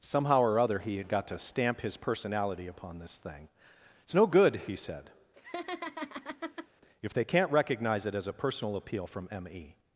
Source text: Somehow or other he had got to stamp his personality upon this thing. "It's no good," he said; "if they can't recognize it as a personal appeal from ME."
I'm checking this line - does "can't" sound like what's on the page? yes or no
yes